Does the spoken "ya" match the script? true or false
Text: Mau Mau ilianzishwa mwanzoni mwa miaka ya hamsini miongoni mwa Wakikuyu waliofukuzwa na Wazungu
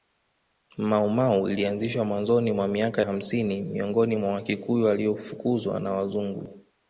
false